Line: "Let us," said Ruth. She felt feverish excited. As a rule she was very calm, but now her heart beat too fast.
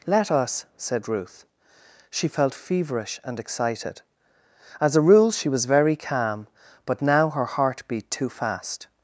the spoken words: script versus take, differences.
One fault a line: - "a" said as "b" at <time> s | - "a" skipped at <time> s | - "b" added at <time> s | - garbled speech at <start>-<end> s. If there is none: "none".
- "and" added at 3.2 s